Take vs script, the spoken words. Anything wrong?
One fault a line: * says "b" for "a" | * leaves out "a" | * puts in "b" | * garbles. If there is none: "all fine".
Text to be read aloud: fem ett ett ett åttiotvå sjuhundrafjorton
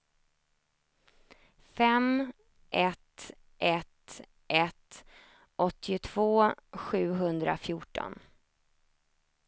all fine